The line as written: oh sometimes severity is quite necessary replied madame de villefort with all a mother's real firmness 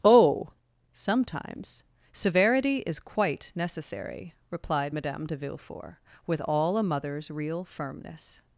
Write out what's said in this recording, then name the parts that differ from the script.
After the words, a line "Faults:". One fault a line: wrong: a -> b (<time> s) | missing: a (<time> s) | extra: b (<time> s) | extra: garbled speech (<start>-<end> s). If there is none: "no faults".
oh sometimes severity is quite necessary replied madame de villefort with all a mother's real firmness
Faults:
no faults